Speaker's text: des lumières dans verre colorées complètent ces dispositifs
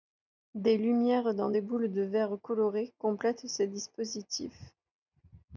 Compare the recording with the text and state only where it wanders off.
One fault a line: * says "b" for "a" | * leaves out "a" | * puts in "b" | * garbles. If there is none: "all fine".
* puts in "des boules de"